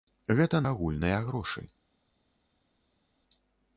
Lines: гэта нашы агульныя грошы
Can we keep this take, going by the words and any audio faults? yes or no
no